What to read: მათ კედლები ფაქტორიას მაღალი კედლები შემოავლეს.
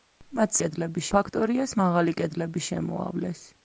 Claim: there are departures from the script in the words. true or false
false